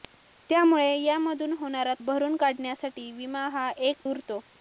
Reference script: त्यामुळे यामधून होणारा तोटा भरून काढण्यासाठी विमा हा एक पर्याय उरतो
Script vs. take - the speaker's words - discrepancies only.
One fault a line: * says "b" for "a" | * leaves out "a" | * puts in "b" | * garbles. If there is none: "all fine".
* leaves out "तोटा"
* leaves out "पर्याय"